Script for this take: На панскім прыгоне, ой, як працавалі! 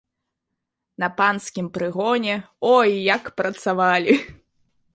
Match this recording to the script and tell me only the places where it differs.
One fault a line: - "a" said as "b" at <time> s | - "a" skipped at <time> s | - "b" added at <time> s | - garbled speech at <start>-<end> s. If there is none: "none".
none